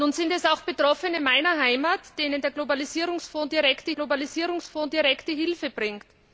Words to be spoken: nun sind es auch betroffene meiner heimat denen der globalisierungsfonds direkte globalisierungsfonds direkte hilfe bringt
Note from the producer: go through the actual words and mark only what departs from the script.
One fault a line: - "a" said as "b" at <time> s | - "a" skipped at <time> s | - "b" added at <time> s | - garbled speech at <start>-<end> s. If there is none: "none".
none